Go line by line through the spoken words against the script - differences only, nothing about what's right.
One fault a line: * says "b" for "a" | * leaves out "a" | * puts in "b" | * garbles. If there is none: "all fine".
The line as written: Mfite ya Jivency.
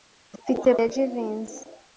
all fine